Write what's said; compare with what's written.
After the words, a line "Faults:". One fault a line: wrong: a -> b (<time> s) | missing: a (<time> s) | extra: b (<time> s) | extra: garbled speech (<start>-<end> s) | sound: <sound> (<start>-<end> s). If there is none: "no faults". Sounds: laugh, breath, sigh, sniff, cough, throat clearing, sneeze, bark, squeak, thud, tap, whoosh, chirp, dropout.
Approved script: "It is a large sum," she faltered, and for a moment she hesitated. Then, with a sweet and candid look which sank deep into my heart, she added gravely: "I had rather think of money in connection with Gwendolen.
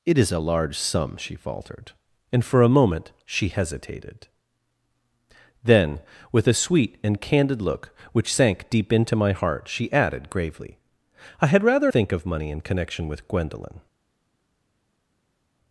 "It is a large sum," she faltered, and for a moment she hesitated. Then, with a sweet and candid look which sank deep into my heart, she added gravely: "I had rather think of money in connection with Gwendolen.
Faults:
no faults